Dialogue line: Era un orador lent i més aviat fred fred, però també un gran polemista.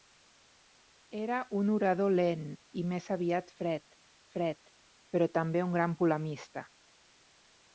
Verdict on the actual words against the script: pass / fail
pass